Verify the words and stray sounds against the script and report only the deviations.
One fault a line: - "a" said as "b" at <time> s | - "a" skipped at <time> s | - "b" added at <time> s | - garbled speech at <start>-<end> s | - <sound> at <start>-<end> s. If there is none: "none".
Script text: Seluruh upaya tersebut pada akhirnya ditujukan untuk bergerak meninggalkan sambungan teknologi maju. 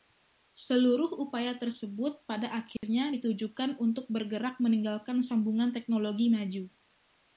- dropout at 2.8-2.8 s